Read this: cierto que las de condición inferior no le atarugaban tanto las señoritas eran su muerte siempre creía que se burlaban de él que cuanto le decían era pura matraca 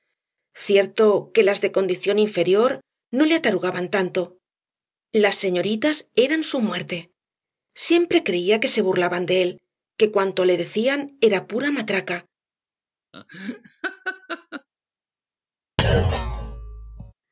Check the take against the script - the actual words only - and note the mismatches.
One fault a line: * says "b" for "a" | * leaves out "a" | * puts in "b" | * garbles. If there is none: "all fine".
all fine